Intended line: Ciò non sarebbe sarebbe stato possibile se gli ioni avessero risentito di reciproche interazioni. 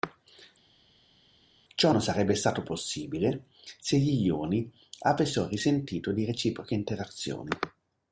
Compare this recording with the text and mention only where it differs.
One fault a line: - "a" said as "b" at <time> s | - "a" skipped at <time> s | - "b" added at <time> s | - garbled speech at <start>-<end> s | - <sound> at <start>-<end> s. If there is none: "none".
- "sarebbe" skipped at 2.3 s